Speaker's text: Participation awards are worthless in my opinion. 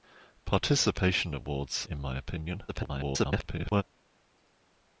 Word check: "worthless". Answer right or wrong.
wrong